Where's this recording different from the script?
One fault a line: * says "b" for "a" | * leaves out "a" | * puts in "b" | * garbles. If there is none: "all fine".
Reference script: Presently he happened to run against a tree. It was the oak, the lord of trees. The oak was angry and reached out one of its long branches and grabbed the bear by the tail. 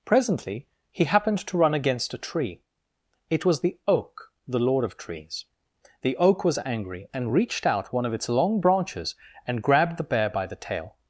all fine